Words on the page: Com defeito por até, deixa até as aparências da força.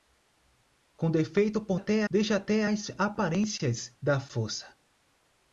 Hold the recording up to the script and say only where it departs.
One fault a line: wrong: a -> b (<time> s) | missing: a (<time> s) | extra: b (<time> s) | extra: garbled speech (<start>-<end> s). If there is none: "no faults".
no faults